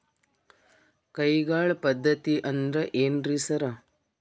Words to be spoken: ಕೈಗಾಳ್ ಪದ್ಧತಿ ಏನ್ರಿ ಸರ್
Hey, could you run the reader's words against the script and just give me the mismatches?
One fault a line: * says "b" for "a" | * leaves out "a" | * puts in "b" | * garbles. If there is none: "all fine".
* puts in "ಅಂದ್ರ್"